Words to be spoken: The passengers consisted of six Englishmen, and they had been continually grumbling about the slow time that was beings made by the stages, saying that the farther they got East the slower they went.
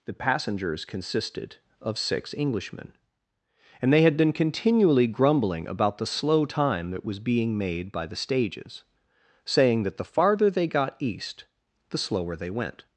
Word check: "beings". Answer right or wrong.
wrong